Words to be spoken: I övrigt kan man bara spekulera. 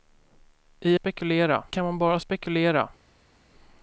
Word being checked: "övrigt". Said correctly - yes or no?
no